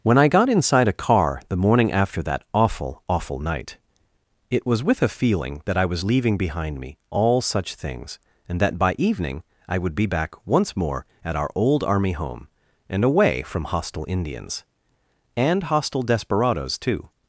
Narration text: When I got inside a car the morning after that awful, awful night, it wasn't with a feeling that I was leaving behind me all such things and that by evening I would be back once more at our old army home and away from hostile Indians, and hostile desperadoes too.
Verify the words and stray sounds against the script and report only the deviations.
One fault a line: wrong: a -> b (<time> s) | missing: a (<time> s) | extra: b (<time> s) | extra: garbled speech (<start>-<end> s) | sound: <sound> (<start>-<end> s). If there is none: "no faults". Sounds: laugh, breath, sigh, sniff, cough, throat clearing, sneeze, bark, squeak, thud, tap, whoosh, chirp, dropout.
wrong: wasn't -> was (4.7 s)